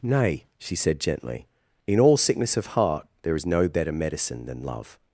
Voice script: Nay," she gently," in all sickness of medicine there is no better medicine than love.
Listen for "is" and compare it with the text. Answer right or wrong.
right